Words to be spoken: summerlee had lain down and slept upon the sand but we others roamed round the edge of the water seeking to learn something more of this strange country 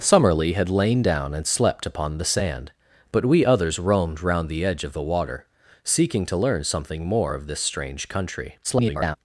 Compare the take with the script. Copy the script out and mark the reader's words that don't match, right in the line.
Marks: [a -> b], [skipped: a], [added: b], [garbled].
summerlee had lain down and slept upon the sand but we others roamed round the edge of the water seeking to learn something more of this strange country [garbled]